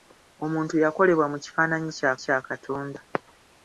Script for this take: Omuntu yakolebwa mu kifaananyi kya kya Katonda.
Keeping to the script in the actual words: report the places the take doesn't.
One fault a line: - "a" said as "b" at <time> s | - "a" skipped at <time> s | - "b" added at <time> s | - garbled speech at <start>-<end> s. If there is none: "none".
none